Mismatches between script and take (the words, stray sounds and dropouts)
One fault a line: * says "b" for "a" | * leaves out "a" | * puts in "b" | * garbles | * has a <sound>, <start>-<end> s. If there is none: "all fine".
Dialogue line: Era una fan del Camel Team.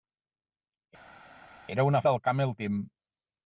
* leaves out "fan"